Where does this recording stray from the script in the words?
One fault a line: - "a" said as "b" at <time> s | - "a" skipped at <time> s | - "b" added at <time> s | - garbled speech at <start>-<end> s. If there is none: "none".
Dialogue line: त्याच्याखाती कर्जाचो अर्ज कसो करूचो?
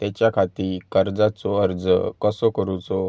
none